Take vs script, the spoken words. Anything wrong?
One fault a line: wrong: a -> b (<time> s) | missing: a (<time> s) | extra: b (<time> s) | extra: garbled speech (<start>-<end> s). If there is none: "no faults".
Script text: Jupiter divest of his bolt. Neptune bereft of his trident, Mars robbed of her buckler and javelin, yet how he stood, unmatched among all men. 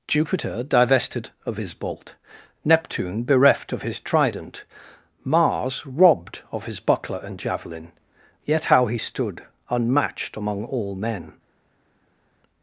wrong: divest -> divested (0.6 s)
wrong: her -> his (6.7 s)